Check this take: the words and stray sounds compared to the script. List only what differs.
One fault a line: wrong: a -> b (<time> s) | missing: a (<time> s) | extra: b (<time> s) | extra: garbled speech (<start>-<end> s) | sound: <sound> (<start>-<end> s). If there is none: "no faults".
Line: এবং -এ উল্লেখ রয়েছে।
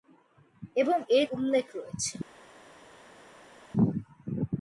no faults